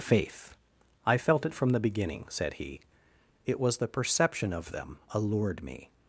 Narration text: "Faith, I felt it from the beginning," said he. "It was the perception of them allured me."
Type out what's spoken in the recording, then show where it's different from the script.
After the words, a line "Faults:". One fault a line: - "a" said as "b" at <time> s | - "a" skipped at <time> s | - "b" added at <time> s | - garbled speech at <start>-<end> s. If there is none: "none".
"Faith, I felt it from the beginning," said he. "It was the perception of them allured me."
Faults:
none